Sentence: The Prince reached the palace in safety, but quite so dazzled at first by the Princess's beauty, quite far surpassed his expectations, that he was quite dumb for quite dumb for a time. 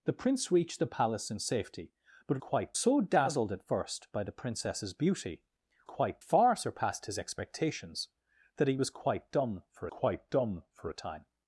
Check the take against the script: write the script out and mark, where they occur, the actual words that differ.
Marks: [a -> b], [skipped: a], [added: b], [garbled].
The Prince reached the palace in safety, but quite so dazzled at first by the Princess's beauty, quite far surpassed his expectations, that he was quite dumb for quite dumb for a time.